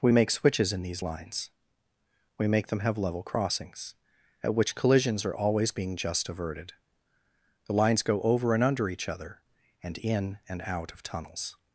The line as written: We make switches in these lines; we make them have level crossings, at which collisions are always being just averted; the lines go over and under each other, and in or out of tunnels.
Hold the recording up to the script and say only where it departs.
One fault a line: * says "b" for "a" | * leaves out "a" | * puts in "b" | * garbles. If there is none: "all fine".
* says "and" for "or"